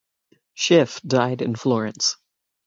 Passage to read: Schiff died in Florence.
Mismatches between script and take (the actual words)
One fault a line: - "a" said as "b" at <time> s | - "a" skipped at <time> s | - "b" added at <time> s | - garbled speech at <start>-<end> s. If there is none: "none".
none